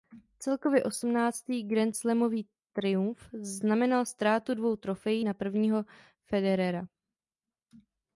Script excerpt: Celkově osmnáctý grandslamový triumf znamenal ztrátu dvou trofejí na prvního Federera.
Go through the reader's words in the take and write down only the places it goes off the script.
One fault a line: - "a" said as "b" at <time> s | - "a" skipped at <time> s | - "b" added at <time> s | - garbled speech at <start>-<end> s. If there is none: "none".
none